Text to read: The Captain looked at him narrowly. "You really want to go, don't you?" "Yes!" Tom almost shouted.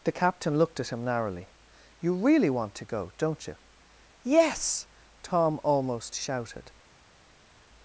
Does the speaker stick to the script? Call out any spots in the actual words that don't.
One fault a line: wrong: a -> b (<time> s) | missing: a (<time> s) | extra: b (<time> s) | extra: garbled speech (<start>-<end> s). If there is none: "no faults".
no faults